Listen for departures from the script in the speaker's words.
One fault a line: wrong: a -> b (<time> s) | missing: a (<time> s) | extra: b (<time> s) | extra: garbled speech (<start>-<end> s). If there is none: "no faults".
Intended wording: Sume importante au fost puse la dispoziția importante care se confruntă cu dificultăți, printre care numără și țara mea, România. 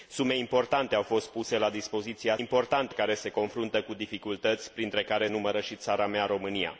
no faults